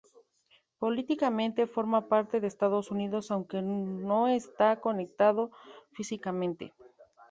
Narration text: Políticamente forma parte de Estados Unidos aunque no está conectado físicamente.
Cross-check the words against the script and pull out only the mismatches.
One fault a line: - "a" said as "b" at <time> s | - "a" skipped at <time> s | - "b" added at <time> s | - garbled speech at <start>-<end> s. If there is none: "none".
none